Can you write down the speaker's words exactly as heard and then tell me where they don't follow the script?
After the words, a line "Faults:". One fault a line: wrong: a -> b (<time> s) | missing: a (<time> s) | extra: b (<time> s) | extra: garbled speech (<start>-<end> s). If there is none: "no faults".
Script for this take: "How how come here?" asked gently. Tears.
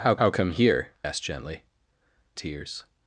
"How how come here?" asked gently. Tears.
Faults:
no faults